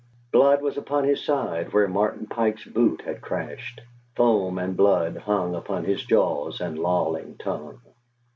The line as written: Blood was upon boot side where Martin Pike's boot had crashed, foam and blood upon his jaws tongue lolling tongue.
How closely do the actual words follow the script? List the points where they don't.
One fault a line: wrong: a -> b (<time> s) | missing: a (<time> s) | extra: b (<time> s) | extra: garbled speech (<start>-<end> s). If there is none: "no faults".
wrong: boot -> his (1.0 s)
extra: hung (5.2 s)
wrong: tongue -> and (6.6 s)